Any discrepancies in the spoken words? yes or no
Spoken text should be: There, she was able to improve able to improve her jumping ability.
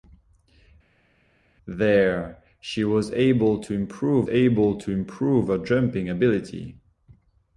no